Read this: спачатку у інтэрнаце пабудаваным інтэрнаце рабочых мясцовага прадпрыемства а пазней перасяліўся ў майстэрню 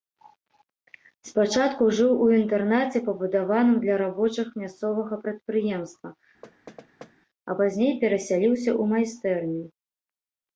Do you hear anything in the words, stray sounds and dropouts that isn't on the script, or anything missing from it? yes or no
yes